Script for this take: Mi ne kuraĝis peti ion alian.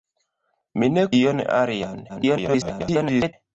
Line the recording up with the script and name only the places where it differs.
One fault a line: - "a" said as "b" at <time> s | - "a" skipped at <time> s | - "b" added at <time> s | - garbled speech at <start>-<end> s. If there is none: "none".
- "kuraĝis peti" skipped at 1.0 s
- garbled speech at 2.1-3.3 s